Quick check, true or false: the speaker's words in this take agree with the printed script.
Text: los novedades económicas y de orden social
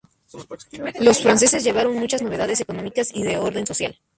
false